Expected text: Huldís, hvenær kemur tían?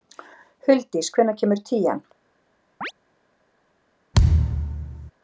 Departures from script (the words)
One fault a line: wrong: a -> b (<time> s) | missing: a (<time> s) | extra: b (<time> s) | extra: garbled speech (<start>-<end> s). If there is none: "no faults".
no faults